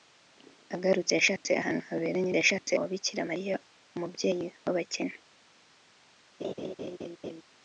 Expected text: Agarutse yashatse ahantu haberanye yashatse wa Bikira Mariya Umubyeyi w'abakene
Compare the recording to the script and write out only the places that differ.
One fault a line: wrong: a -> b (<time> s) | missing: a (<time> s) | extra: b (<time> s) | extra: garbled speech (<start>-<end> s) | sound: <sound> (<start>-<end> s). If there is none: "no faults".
sound: laugh (6.4-7.4 s)